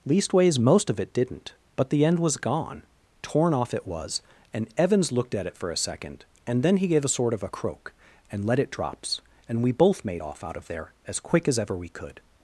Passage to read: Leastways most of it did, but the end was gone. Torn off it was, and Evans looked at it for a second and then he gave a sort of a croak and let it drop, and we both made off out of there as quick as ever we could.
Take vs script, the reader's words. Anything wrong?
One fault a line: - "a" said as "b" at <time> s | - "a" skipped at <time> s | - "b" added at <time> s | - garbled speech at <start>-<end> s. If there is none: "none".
- "did" said as "didn't" at 1.1 s
- "drop" said as "drops" at 8.7 s